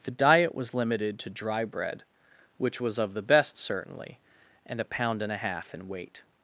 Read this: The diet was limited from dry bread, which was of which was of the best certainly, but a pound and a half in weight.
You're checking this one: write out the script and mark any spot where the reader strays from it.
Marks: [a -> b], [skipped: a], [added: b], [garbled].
The diet was limited [from -> to] dry bread, which was of [skipped: which was of] the best certainly, [but -> and] a pound and a half in weight.